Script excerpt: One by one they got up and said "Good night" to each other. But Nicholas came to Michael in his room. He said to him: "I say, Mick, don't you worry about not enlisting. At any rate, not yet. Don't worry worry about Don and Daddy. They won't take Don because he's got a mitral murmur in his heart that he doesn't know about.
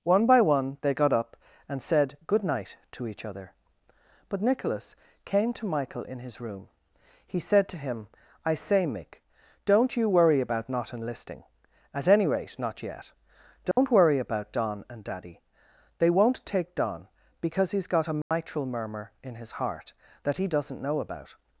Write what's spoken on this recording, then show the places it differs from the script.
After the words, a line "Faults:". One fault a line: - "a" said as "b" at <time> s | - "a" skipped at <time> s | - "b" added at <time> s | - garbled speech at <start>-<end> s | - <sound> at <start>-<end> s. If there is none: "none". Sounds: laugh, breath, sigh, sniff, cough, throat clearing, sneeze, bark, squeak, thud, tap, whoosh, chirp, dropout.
One by one they got up and said "Good night" to each other. But Nicholas came to Michael in his room. He said to him: "I say, Mick, don't you worry about not enlisting. At any rate, not yet. Don't worry about Don and Daddy. They won't take Don because he's got a mitral murmur in his heart that he doesn't know about.
Faults:
- dropout at 13.7-13.8 s
- "worry" skipped at 14.2 s
- dropout at 18.2-18.3 s